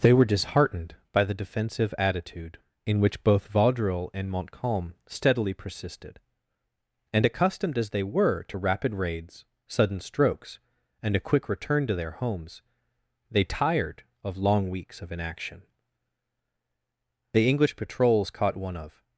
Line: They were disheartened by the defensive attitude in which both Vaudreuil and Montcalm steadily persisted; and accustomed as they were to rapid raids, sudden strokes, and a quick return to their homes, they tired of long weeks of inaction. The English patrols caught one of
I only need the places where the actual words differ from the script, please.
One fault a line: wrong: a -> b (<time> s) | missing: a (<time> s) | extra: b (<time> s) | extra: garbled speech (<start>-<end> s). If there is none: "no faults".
no faults